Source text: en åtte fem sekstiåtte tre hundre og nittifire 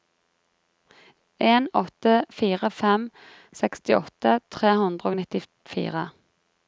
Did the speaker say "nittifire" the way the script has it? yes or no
yes